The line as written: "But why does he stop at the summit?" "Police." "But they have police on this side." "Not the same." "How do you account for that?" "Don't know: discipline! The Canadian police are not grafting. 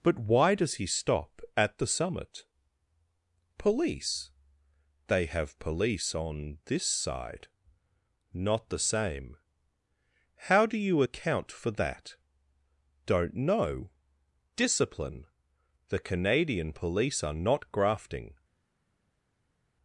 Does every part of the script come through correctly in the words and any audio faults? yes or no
no